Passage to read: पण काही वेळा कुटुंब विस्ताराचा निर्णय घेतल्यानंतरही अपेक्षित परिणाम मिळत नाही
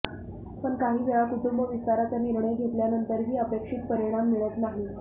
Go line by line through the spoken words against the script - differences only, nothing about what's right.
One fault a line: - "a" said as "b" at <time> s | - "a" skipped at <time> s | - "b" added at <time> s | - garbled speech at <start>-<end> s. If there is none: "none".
none